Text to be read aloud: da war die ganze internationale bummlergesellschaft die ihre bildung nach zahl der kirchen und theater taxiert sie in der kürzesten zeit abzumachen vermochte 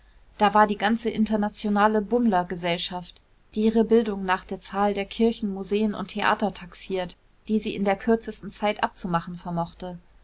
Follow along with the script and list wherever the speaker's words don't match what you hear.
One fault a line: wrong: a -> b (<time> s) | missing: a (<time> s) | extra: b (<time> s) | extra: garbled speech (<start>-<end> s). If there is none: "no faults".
extra: der (4.5 s)
extra: museen (5.5 s)
extra: die (7.5 s)